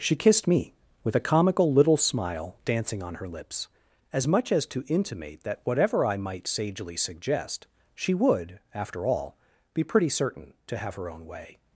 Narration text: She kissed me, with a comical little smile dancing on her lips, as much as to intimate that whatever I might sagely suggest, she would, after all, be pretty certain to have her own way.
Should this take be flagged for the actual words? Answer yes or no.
no